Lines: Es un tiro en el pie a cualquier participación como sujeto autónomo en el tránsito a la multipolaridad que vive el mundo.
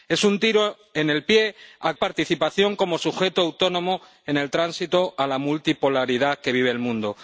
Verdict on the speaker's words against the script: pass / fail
fail